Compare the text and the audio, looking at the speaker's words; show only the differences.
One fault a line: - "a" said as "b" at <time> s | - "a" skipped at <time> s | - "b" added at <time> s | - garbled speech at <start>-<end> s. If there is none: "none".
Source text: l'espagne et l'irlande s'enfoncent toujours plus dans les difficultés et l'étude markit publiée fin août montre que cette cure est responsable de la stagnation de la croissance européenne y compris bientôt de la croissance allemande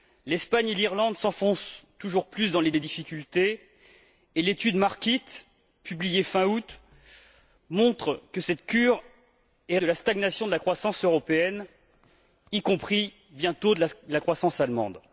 - "les" added at 2.7 s
- "responsable" skipped at 9.8 s